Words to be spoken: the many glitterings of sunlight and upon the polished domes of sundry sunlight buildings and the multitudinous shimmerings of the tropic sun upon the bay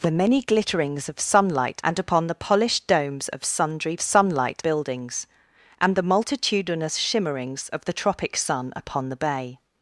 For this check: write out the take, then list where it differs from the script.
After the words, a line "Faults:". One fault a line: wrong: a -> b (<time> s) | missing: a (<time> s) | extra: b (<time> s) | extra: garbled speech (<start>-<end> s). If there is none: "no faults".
the many glitterings of sunlight and upon the polished domes of sundry sunlight buildings and the multitudinous shimmerings of the tropic sun upon the bay
Faults:
no faults